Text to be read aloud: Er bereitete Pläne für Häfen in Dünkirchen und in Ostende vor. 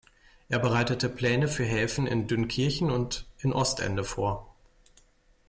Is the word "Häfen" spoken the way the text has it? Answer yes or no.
yes